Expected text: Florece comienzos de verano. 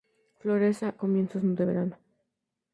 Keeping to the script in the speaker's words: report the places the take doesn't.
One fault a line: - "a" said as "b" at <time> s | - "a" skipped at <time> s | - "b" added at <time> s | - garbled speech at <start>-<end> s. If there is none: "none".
none